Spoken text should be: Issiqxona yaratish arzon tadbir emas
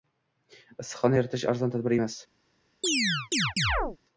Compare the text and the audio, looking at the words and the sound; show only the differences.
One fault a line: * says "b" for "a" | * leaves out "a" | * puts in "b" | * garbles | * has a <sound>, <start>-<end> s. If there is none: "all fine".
* has a chirp, 2.8-4.0 s